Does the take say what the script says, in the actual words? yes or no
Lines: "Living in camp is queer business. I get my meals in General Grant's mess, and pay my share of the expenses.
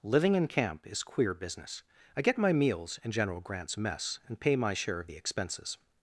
yes